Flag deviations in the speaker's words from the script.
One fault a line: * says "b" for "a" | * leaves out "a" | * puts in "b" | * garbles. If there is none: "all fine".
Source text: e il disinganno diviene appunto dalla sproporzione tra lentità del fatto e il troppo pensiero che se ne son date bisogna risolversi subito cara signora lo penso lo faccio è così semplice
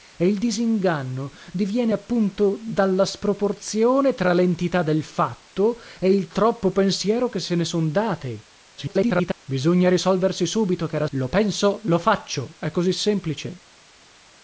* garbles
* leaves out "signora"